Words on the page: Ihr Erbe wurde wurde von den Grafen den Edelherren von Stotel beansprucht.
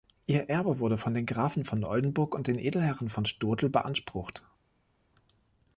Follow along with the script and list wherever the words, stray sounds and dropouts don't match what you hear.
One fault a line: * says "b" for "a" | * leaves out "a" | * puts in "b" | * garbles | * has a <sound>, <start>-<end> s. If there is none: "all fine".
* leaves out "wurde"
* puts in "von Oldenburg und"